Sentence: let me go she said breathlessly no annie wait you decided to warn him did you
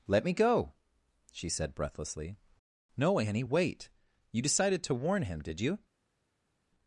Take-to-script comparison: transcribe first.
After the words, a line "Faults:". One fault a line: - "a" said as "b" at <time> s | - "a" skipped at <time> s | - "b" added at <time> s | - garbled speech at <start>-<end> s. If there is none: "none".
let me go she said breathlessly no annie wait you decided to warn him did you
Faults:
none